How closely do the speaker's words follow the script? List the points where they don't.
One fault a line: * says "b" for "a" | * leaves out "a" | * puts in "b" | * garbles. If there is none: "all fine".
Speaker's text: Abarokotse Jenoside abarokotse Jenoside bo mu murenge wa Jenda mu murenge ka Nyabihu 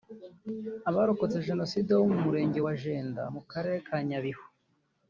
* leaves out "abarokotse Jenoside"
* says "karere" for "murenge"